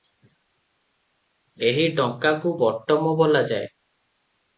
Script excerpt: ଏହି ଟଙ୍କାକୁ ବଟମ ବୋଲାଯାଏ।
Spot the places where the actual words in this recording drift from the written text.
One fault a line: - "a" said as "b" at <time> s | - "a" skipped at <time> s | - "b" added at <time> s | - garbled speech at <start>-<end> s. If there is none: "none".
none